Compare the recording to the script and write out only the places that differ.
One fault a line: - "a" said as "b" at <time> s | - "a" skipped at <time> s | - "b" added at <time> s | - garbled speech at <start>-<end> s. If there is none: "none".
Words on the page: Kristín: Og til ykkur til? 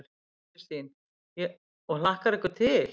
- "til" said as "hlakkar" at 2.0 s